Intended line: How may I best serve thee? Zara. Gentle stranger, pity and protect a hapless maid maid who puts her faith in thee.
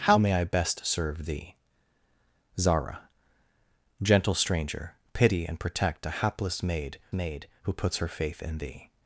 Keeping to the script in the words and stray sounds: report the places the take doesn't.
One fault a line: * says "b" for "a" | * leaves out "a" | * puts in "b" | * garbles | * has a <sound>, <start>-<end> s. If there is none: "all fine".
all fine